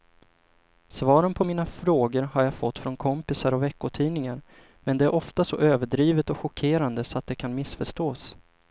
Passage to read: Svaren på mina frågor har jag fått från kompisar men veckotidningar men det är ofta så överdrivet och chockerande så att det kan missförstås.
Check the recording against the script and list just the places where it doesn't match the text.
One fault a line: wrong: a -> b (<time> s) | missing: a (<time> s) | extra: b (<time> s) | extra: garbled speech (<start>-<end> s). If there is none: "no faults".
wrong: men -> och (3.5 s)